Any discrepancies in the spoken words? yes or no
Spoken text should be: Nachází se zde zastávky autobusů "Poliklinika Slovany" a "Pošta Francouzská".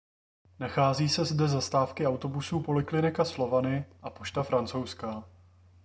no